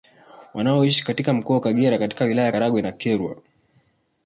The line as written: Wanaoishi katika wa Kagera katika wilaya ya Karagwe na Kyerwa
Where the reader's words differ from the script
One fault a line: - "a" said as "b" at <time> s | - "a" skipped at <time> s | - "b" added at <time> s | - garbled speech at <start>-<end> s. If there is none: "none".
- "mkoa" added at 1.3 s